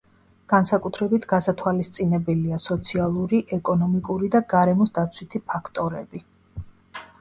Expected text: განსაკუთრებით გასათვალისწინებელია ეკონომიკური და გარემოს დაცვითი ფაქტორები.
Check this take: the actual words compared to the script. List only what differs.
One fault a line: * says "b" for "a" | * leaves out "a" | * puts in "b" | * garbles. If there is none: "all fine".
* puts in "სოციალური"